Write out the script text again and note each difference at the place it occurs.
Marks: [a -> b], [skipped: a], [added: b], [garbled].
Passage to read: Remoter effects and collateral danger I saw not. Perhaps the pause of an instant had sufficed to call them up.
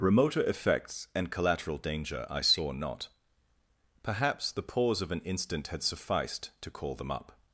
Remoter effects and collateral danger I saw not. Perhaps the pause of an instant had sufficed to call them up.